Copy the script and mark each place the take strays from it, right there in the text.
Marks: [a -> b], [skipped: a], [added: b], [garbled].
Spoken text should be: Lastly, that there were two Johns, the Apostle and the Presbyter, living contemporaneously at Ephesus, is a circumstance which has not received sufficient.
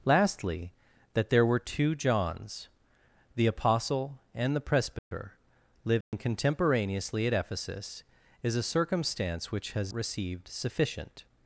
Lastly, that there were two Johns, the Apostle and the Presbyter, living contemporaneously at Ephesus, is a circumstance which has [skipped: not] received sufficient.